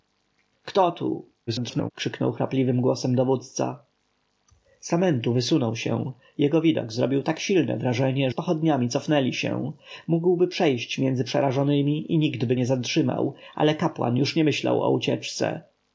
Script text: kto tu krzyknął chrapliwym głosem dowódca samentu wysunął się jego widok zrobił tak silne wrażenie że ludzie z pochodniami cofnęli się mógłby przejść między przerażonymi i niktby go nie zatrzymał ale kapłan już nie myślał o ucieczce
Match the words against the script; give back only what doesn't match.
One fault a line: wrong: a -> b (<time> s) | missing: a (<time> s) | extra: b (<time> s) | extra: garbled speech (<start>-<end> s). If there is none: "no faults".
extra: garbled speech (1.5-1.9 s)
missing: że ludzie (8.3 s)
missing: go (12.6 s)